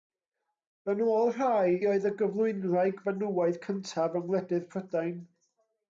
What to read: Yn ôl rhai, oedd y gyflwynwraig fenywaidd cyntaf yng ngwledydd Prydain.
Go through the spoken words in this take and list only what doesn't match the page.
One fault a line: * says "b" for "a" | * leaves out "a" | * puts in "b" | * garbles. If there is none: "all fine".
all fine